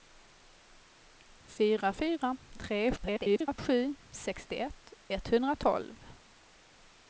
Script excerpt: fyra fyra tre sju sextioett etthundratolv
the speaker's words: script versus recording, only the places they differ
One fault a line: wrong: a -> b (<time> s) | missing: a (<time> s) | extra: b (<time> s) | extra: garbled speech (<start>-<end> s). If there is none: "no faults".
extra: garbled speech (3.0-3.6 s)